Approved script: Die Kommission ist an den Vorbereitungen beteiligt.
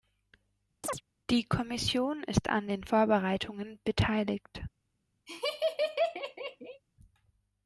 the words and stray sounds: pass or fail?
fail